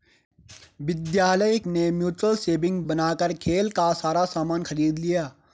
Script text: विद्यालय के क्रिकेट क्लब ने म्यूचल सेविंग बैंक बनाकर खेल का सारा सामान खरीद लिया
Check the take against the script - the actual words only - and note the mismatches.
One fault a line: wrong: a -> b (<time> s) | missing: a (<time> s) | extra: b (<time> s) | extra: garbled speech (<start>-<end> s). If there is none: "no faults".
missing: के क्रिकेट क्लब (1.6 s)
missing: बैंक (2.8 s)